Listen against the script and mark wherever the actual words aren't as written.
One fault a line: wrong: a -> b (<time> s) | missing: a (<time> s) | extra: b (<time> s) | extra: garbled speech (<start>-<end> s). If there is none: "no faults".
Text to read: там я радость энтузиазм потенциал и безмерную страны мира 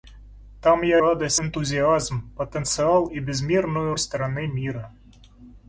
no faults